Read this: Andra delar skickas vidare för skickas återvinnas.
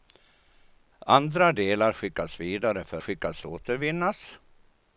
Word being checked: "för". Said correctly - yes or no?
yes